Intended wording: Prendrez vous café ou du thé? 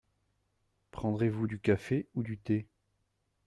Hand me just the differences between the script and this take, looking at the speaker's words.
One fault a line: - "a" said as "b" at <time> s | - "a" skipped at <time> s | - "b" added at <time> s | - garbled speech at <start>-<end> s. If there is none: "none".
- "du" added at 1.4 s